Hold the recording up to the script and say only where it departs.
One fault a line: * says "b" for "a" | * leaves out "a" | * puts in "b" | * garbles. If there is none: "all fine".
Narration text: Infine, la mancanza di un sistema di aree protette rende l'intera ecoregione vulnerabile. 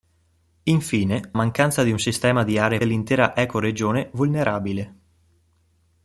* leaves out "la"
* leaves out "protette rende"